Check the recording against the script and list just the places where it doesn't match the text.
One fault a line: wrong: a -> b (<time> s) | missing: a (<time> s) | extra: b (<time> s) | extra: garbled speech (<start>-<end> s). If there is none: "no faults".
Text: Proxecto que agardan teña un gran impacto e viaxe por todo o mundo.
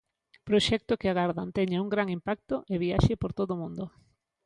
no faults